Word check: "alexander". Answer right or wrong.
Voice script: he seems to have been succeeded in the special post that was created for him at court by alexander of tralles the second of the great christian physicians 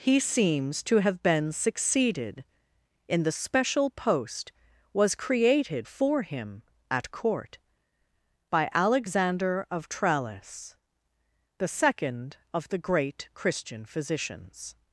right